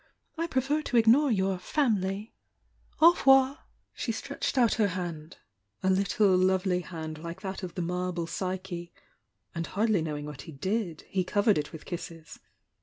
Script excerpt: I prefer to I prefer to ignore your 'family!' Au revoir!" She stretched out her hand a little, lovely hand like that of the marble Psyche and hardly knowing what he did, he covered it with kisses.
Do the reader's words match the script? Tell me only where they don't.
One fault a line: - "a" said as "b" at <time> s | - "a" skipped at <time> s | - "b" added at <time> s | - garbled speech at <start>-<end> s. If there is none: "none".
- "I prefer to" skipped at 1.0 s